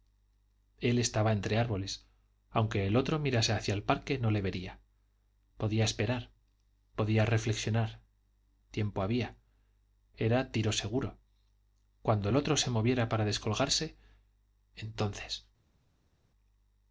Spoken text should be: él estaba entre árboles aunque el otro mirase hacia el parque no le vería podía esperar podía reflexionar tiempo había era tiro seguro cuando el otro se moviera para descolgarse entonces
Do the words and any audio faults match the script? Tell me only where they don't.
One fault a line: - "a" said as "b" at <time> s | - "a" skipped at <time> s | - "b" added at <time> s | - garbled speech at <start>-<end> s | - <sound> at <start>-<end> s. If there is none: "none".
none